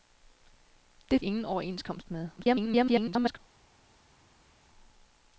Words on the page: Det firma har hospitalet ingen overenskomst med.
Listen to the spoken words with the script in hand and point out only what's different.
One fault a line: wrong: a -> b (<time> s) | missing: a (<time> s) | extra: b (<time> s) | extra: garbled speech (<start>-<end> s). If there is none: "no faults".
missing: firma har hospitalet (1.2 s)
extra: garbled speech (2.4-3.4 s)